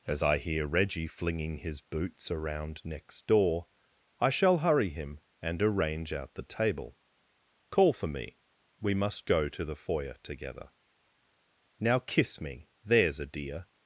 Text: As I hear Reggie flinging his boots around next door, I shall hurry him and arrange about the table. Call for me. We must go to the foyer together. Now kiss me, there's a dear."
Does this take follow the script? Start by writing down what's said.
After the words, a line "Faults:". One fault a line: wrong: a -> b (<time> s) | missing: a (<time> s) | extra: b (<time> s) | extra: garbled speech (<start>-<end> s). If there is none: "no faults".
As I hear Reggie flinging his boots around next door, I shall hurry him and arrange out the table. Call for me. We must go to the foyer together. Now kiss me, there's a dear."
Faults:
wrong: about -> out (6.1 s)